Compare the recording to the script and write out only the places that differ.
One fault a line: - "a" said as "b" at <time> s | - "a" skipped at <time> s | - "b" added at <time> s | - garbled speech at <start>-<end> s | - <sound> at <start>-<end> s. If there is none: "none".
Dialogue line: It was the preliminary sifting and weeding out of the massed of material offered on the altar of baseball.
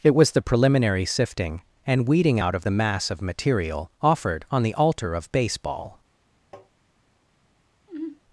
- "massed" said as "mass" at 2.7 s
- tap at 6.5-6.7 s
- sigh at 7.9-8.2 s